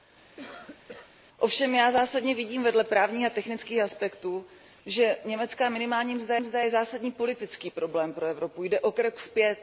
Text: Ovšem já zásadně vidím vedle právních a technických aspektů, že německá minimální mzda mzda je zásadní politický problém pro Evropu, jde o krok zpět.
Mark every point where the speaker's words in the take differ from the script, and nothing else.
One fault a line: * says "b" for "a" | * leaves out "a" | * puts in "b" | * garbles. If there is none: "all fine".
all fine